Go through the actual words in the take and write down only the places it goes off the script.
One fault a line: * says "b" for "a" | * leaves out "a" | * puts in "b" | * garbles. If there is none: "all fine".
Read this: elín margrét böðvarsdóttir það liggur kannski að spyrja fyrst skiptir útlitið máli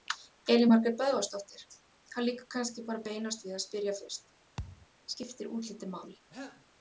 * puts in "bara beinast við"